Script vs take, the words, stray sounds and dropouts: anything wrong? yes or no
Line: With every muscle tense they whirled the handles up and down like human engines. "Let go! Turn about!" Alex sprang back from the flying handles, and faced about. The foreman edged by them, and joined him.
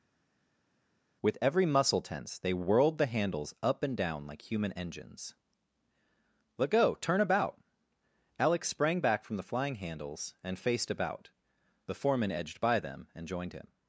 no